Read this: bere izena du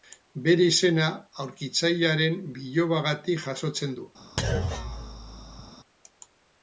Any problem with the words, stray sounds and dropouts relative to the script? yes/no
yes